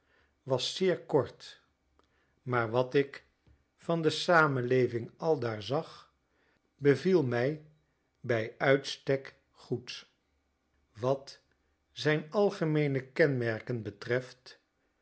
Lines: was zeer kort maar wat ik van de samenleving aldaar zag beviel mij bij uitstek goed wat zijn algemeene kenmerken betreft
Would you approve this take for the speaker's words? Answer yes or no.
yes